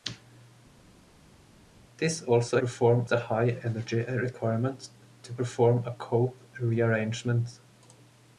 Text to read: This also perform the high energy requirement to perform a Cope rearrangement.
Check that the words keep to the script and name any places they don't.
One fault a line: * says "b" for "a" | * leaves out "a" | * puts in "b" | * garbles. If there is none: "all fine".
all fine